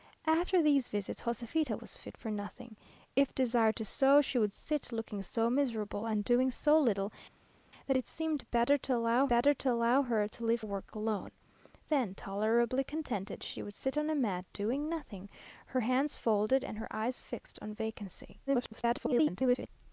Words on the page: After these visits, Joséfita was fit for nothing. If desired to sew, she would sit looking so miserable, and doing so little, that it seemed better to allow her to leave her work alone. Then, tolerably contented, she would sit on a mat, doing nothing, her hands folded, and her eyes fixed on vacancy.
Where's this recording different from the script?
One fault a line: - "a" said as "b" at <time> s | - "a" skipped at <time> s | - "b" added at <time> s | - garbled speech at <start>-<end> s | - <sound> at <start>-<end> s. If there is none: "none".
- "better to allow" added at 9.3 s
- "her" skipped at 10.6 s
- garbled speech at 18.5-19.7 s